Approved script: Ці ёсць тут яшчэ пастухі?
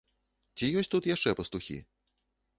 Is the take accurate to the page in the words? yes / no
yes